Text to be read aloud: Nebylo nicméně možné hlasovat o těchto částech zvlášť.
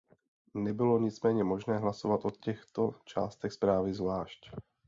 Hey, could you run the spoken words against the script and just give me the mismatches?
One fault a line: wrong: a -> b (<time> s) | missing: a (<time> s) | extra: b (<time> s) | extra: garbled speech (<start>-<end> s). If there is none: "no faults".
extra: zprávy (3.5 s)